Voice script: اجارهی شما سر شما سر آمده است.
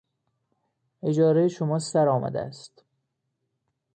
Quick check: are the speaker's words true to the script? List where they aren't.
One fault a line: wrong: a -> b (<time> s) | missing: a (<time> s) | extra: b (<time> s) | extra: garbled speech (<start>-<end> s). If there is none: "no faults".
missing: شما سر (2.1 s)